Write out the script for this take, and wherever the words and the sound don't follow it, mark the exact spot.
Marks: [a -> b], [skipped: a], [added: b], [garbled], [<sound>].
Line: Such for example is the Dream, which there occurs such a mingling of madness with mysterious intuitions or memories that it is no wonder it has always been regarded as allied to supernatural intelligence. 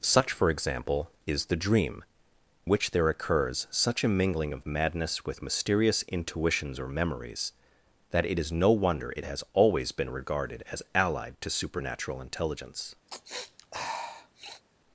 Such for example is the Dream, which there occurs such a mingling of madness with mysterious intuitions or memories that it is no wonder it has always been regarded as allied to supernatural intelligence. [sniff]